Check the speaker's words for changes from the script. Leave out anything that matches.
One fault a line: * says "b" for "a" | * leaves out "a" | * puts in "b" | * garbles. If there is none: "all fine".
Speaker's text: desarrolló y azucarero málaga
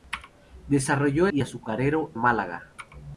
all fine